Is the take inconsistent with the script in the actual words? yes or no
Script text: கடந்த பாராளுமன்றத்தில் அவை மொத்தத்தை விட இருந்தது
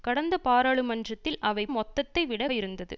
no